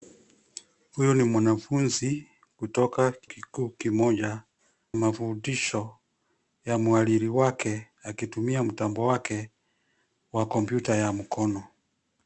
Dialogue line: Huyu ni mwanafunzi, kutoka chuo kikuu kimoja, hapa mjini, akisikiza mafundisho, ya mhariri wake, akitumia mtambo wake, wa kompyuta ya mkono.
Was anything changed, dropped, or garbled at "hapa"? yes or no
yes